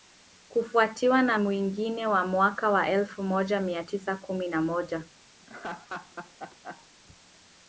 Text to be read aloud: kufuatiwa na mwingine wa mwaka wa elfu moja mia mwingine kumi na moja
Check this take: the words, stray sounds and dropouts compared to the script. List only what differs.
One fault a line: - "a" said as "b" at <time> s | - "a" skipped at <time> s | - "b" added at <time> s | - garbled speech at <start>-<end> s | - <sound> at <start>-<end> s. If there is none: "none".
- "mwingine" said as "tisa" at 3.8 s
- laugh at 5.4-6.9 s